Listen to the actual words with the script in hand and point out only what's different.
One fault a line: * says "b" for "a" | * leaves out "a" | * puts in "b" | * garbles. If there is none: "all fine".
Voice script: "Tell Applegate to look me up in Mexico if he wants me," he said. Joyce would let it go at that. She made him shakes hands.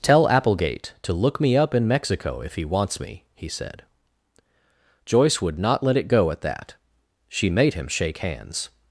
* puts in "not"
* says "shake" for "shakes"